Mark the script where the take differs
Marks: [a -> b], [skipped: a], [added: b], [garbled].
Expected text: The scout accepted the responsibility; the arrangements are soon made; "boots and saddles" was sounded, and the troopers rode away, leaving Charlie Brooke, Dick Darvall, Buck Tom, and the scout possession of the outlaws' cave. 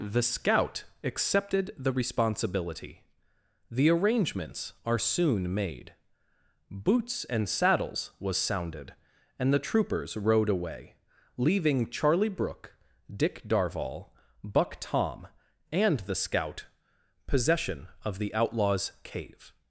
The scout accepted the responsibility; the arrangements are soon made; "boots and saddles" was sounded, and the troopers rode away, leaving Charlie Brooke, Dick Darvall, Buck Tom, and the scout possession of the outlaws' cave.